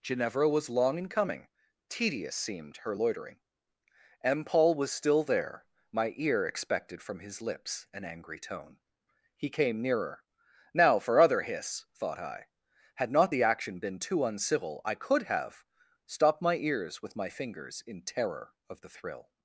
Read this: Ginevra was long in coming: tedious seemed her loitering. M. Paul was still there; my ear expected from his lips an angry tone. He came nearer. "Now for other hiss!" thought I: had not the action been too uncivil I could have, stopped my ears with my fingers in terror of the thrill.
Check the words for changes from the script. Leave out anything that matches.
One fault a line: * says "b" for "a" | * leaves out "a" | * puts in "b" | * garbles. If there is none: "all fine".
all fine